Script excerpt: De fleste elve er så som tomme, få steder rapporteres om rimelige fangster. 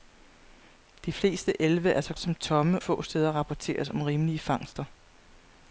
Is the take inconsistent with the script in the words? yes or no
no